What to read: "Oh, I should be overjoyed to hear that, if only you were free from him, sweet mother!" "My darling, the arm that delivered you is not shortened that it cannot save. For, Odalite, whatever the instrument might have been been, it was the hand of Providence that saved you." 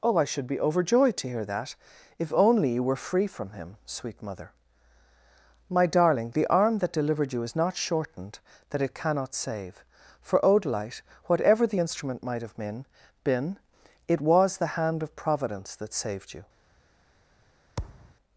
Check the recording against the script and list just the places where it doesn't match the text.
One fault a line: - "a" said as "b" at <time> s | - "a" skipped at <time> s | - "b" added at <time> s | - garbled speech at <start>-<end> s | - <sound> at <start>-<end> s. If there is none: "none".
- thud at 17.8-18.2 s